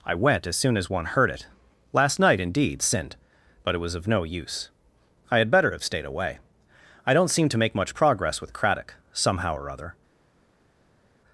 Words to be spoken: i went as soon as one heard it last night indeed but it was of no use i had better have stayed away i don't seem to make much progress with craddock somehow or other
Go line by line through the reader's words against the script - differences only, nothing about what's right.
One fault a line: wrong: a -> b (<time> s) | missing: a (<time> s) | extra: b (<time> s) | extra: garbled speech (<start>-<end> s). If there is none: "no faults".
extra: sinned (2.8 s)